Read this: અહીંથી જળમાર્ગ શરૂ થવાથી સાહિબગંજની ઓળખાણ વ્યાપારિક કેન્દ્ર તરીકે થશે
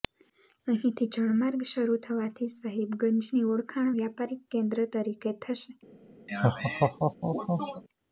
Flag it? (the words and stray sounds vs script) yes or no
yes